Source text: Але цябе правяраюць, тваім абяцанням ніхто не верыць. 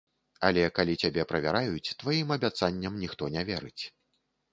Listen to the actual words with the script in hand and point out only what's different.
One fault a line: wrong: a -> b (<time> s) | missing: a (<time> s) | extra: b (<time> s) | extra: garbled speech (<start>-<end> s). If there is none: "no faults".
extra: калі (0.8 s)